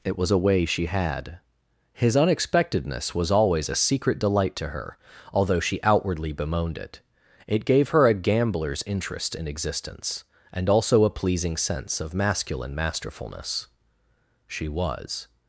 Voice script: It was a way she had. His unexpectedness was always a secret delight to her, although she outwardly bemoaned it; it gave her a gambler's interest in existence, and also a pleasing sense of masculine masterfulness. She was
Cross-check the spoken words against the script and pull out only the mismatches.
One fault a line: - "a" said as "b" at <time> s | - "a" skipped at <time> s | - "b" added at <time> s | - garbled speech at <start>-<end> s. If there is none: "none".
none